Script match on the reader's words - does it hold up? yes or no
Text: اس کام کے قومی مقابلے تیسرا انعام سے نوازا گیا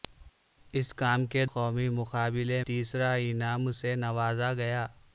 yes